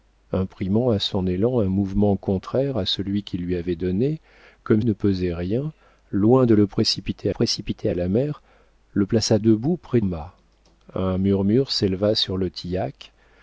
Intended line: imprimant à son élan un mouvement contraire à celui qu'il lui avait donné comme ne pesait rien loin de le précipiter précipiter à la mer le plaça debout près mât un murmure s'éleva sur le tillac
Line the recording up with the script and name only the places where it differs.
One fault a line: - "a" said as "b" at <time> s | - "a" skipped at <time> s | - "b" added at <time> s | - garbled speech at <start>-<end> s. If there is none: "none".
none